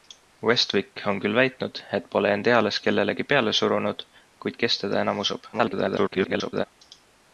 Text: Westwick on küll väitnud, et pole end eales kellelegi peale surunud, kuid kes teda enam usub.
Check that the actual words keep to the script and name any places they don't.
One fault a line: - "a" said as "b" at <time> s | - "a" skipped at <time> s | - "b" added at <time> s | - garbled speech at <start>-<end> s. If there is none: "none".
- garbled speech at 5.5-6.6 s